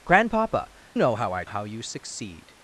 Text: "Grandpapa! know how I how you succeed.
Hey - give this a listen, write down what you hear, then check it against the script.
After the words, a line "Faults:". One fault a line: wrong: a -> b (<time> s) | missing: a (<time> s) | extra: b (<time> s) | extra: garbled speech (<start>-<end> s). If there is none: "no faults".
"Grandpapa! know how I how you succeed.
Faults:
no faults